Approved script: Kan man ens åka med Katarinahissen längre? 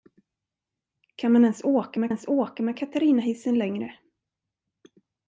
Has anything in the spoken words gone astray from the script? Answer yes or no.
yes